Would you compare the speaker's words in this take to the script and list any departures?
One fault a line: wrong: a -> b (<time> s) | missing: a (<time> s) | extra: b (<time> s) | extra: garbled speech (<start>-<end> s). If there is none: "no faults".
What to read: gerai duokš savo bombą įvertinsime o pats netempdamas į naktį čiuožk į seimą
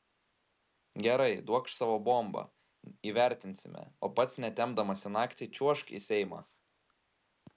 no faults